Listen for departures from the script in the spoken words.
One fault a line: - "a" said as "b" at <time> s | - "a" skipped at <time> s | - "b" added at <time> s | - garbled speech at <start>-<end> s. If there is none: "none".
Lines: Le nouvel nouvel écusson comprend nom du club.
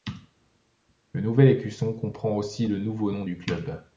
- "nouvel" skipped at 1.5 s
- "aussi le nouveau" added at 2.4 s